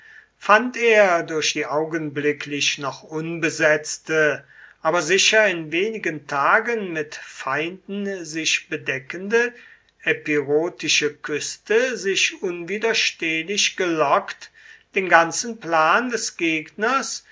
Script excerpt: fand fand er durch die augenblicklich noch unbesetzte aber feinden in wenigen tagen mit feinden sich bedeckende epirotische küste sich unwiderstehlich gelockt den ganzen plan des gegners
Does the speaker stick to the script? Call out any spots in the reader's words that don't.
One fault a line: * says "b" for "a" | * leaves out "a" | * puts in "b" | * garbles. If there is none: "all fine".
* leaves out "fand"
* says "sicher" for "feinden"